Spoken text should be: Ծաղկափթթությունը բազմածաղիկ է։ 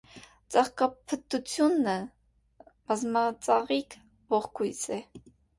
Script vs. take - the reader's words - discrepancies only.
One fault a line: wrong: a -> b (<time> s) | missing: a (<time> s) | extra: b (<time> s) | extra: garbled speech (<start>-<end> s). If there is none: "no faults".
extra: ողկույզ (4.4 s)